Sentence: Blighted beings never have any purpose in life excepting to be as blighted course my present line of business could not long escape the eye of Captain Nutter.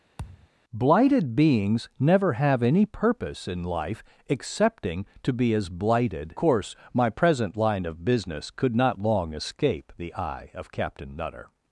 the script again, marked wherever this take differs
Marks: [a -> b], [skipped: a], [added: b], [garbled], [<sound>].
[thud] Blighted beings never have any purpose in life excepting to be as blighted course my present line of business could not long escape the eye of Captain Nutter.